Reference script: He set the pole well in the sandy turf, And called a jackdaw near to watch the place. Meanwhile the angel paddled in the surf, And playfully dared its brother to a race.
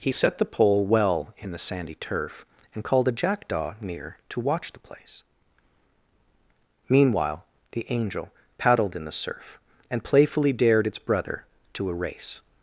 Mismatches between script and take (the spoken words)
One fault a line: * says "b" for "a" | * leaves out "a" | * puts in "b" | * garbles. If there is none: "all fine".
all fine